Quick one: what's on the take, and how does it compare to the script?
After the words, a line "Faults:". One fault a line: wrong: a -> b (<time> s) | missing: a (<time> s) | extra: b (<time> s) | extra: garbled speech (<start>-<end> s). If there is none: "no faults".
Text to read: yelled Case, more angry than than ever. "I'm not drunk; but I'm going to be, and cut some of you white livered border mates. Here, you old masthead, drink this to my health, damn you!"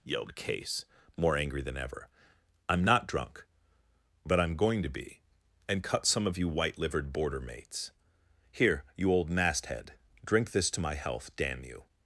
yelled Case, more angry than ever. "I'm not drunk; but I'm going to be, and cut some of you white livered border mates. Here, you old masthead, drink this to my health, damn you!"
Faults:
missing: than (1.8 s)